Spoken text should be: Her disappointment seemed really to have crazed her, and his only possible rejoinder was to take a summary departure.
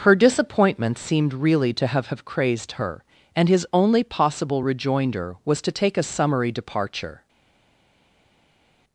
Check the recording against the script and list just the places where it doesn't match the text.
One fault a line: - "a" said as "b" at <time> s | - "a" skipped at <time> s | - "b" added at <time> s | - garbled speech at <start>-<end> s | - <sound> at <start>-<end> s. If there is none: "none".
- "have" added at 2.1 s